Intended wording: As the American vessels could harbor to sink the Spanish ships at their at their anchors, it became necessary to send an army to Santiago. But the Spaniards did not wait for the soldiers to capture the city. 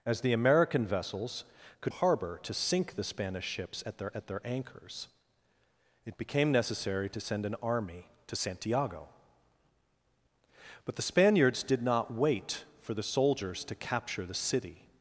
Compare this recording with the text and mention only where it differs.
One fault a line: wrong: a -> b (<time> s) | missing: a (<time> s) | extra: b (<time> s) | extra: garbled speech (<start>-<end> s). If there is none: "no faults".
no faults